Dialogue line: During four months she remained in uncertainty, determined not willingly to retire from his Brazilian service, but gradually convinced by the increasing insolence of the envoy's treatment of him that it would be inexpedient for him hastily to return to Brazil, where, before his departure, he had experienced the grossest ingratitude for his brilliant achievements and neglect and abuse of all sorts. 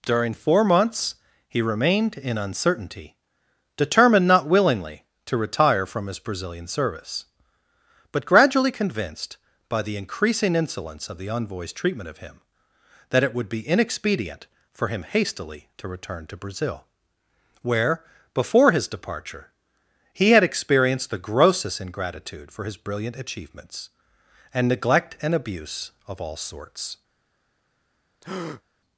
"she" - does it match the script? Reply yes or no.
no